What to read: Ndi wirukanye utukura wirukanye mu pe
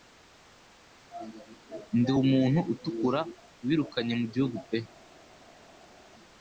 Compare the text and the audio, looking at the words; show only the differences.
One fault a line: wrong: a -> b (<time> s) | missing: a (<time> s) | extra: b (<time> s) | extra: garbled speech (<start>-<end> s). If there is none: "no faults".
wrong: wirukanye -> umuntu (2.2 s)
extra: gihugu (4.3 s)